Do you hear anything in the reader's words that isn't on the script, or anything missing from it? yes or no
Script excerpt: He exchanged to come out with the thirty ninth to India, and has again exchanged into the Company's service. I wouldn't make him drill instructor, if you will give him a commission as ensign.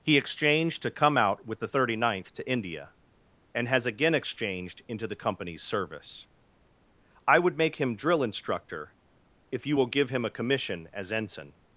yes